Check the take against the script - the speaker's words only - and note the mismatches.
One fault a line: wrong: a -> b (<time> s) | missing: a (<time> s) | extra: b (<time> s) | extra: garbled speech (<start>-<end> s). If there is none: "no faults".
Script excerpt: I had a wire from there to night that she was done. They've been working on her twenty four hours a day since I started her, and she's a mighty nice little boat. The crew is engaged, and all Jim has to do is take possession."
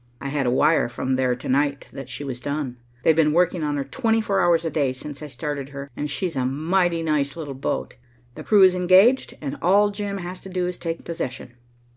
no faults